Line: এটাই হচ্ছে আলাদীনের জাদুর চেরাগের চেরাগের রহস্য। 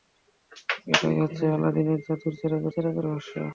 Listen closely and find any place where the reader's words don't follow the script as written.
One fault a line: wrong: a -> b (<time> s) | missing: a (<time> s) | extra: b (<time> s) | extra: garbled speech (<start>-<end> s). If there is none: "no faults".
no faults